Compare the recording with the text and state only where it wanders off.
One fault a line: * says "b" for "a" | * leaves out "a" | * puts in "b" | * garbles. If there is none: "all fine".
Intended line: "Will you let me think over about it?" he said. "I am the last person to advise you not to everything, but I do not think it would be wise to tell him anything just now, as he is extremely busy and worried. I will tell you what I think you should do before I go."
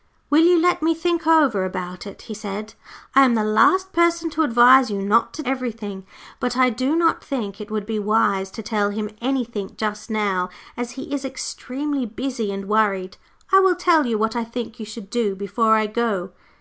all fine